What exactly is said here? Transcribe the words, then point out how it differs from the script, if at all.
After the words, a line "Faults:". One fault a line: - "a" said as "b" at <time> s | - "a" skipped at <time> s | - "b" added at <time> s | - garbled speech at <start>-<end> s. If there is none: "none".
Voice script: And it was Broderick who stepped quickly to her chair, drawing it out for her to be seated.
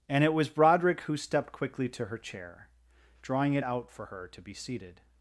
And it was Broderick who stepped quickly to her chair, drawing it out for her to be seated.
Faults:
none